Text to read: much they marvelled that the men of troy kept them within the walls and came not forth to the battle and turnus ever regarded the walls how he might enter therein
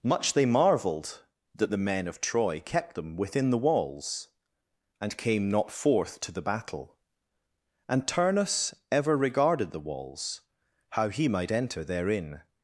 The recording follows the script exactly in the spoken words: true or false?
true